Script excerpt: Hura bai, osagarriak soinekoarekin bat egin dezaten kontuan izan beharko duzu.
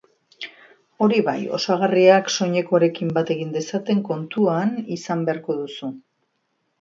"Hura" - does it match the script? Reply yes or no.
no